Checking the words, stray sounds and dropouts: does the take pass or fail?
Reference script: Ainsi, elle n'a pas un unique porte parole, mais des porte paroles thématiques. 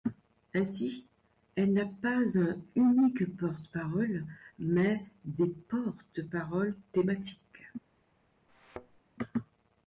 fail